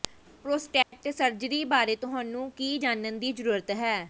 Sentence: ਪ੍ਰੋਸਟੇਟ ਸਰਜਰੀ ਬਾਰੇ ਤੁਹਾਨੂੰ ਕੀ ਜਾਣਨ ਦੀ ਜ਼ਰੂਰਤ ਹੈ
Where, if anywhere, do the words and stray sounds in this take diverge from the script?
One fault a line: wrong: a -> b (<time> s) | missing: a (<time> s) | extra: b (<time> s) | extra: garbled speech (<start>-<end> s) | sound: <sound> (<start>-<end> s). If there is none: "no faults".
sound: dropout (0.8-0.9 s)